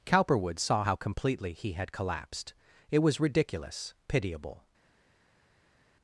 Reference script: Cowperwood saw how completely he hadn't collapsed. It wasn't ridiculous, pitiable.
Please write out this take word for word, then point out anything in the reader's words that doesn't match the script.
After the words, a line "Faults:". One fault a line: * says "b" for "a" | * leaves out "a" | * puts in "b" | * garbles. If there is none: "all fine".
Cowperwood saw how completely he had collapsed. It was ridiculous, pitiable.
Faults:
* says "had" for "hadn't"
* says "was" for "wasn't"